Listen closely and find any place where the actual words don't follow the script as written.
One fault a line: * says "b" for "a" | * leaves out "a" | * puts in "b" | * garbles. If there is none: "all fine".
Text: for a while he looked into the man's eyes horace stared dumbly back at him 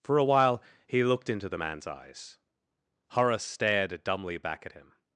all fine